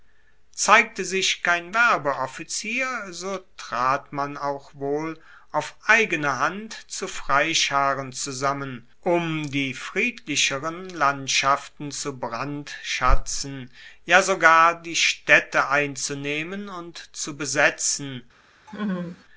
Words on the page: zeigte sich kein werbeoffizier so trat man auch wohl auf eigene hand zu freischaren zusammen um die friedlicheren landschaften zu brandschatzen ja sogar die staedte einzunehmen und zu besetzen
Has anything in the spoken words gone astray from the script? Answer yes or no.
no